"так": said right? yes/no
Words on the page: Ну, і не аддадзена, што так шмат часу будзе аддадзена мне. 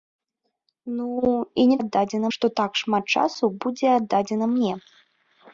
yes